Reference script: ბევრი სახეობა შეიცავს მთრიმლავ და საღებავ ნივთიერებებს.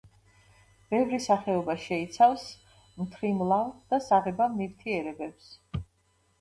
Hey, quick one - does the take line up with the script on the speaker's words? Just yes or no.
yes